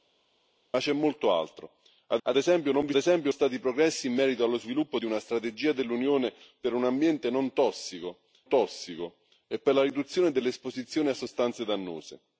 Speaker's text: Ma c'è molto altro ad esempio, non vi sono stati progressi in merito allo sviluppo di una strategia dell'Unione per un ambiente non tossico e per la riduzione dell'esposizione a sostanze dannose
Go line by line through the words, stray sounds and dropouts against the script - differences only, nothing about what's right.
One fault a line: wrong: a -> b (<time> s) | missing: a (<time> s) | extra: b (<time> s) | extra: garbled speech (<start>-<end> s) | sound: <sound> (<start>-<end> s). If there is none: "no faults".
extra: ad (2.2 s)
wrong: sono -> esempio (2.9 s)
extra: tossico (8.5 s)